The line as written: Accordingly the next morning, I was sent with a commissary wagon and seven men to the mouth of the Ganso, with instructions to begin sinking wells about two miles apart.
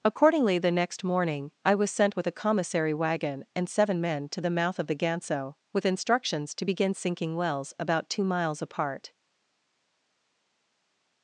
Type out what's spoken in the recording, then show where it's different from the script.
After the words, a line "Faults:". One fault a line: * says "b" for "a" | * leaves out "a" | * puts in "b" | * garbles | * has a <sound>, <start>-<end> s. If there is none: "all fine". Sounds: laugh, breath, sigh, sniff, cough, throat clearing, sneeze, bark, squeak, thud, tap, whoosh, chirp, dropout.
Accordingly the next morning, I was sent with a commissary wagon and seven men to the mouth of the Ganso, with instructions to begin sinking wells about two miles apart.
Faults:
all fine